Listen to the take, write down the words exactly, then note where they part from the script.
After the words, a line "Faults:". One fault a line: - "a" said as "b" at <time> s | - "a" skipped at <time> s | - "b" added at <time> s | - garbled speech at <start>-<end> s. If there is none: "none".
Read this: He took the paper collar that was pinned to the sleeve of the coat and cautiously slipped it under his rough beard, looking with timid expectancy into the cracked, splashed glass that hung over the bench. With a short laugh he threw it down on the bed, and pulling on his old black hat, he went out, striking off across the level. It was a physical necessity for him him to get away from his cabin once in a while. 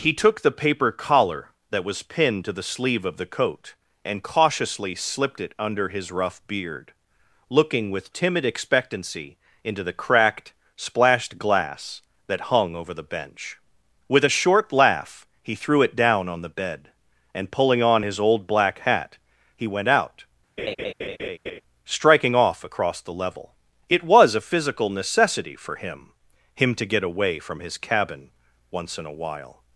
He took the paper collar that was pinned to the sleeve of the coat and cautiously slipped it under his rough beard, looking with timid expectancy into the cracked, splashed glass that hung over the bench. With a short laugh he threw it down on the bed, and pulling on his old black hat, he went out, striking off across the level. It was a physical necessity for him him to get away from his cabin once in a while.
Faults:
none